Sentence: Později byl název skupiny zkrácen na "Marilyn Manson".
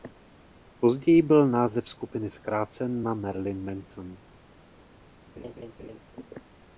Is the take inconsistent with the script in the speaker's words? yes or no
no